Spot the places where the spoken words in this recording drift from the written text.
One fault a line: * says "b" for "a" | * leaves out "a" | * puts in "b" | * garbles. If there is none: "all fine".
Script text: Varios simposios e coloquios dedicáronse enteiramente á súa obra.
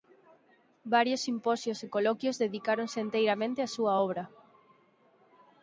all fine